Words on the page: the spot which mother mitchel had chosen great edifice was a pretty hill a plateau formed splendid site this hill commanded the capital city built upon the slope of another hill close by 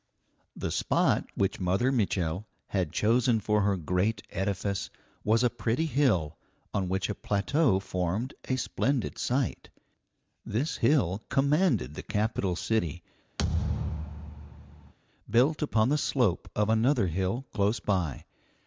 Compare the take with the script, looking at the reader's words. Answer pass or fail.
fail